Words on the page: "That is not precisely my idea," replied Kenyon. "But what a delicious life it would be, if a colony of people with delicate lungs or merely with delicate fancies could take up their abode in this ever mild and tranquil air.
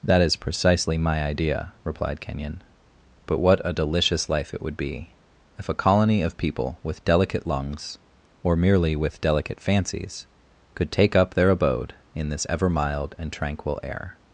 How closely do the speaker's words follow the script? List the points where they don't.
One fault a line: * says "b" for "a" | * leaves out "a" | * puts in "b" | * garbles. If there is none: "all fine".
* leaves out "not"